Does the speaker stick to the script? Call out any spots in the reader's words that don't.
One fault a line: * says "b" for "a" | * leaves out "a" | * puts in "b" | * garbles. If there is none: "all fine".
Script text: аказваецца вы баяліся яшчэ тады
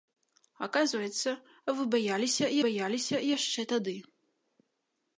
* puts in "баяліся"